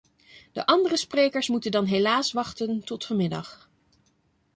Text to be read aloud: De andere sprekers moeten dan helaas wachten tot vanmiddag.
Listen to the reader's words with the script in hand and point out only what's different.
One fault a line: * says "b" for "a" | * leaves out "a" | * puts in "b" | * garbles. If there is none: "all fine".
all fine